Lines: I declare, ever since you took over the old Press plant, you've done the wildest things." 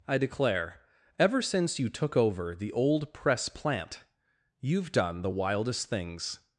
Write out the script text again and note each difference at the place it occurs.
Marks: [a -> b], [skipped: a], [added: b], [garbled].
I declare, ever since you took over the old Press plant, you've done the wildest things."